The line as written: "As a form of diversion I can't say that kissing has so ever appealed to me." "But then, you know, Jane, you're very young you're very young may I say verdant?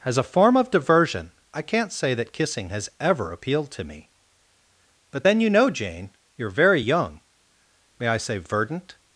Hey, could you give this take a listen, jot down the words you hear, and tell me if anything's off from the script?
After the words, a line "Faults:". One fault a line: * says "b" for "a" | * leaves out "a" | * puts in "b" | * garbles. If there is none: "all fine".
"As a form of diversion I can't say that kissing has ever appealed to me." "But then, you know, Jane, you're very young may I say verdant?
Faults:
* leaves out "so"
* leaves out "you're very young"